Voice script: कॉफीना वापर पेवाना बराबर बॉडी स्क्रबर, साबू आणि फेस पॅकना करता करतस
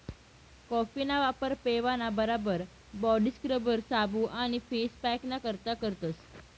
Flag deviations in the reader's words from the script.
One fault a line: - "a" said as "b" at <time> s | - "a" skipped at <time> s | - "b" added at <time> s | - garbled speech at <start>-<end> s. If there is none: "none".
none